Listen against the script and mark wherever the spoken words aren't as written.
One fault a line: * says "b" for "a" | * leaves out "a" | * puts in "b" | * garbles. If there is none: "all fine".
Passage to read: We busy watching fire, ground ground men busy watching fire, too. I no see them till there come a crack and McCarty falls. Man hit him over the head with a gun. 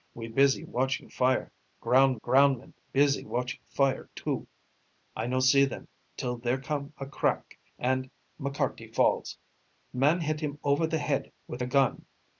all fine